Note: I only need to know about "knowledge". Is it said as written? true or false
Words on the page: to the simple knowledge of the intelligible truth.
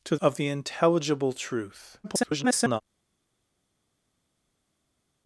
false